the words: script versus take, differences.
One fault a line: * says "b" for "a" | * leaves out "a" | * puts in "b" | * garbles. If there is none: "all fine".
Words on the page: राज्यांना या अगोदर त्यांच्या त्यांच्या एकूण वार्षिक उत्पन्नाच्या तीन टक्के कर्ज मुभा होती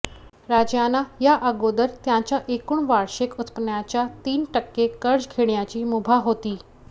* leaves out "त्यांच्या"
* puts in "घेण्याची"